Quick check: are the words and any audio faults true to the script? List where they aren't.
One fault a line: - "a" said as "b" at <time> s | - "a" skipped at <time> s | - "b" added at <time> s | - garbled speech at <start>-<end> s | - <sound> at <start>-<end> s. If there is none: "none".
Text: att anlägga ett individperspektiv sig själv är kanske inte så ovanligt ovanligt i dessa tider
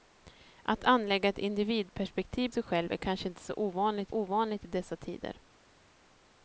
none